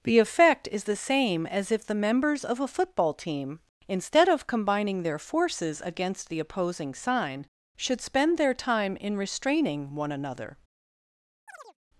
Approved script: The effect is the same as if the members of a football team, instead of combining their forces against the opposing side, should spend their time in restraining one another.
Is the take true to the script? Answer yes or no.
no